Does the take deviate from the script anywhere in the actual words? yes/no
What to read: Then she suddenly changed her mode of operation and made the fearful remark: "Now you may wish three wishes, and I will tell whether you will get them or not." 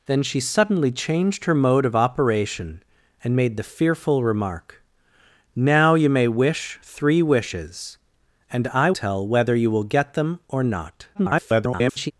yes